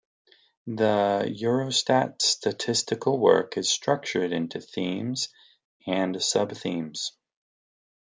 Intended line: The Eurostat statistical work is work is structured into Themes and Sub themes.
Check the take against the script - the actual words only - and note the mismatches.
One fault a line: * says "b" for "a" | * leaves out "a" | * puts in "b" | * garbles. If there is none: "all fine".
* leaves out "work is"